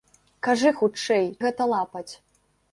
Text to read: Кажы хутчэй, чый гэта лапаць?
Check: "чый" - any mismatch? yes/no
yes